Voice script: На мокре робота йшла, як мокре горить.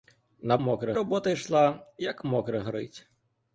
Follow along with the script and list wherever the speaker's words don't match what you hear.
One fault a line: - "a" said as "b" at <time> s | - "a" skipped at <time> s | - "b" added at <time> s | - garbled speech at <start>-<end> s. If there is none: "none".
none